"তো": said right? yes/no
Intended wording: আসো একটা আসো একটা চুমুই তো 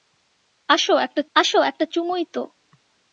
yes